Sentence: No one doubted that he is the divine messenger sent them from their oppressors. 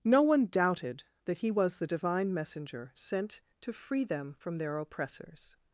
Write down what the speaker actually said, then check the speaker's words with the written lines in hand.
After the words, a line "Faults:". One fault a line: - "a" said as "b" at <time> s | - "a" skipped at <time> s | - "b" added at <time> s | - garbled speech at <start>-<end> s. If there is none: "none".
No one doubted that he was the divine messenger sent to free them from their oppressors.
Faults:
- "is" said as "was" at 1.5 s
- "to free" added at 3.6 s